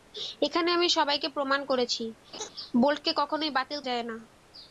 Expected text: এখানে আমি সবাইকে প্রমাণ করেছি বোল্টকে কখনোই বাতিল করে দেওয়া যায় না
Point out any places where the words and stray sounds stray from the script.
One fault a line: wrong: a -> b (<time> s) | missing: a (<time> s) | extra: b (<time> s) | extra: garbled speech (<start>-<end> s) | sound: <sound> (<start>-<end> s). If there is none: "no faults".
sound: laugh (2.3-2.5 s)
missing: করে দেওয়া (3.8 s)